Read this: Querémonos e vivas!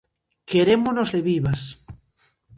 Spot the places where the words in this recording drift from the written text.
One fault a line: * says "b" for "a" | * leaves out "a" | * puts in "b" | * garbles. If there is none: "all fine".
all fine